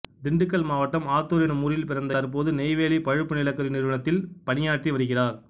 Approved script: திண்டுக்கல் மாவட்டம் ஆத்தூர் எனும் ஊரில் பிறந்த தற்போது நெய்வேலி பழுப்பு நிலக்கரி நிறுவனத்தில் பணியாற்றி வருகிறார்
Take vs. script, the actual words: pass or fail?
pass